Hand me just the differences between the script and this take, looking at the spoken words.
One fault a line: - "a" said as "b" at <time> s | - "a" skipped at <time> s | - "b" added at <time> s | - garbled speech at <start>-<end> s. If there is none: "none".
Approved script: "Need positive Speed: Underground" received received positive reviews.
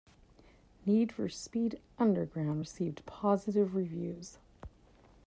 - "positive" said as "for" at 1.1 s
- "received" skipped at 3.1 s